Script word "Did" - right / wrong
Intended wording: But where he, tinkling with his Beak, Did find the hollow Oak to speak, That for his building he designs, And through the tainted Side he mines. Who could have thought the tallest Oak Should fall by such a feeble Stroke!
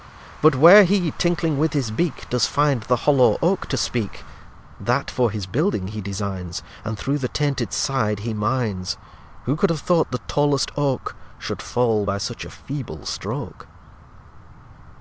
wrong